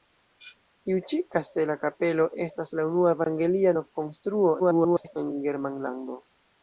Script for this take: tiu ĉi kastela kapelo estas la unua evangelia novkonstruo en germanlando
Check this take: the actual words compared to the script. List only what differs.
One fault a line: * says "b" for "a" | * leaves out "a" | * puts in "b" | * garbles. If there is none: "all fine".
* garbles